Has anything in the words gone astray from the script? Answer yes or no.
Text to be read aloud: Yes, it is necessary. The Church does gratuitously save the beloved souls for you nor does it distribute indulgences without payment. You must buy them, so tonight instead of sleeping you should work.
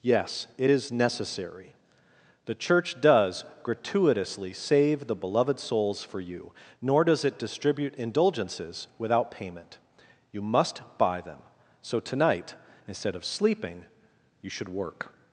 no